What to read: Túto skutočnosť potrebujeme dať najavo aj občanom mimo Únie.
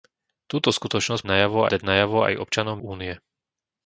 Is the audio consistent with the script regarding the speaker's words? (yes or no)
no